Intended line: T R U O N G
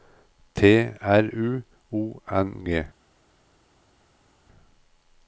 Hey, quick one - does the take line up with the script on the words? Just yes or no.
yes